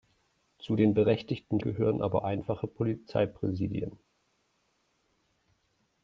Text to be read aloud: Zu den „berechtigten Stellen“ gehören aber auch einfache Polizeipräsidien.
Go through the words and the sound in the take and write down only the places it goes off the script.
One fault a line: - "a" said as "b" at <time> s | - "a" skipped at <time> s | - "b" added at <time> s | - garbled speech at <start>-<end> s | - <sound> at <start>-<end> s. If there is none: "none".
- "Stellen" skipped at 1.6 s
- "auch" skipped at 2.2 s